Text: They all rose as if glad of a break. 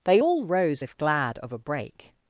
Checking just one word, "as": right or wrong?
wrong